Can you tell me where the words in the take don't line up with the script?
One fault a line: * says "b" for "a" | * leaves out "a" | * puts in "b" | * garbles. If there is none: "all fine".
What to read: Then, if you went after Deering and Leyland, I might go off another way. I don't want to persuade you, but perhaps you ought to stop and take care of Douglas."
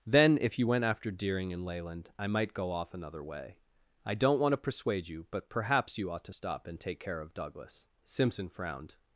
* puts in "Simpson frowned"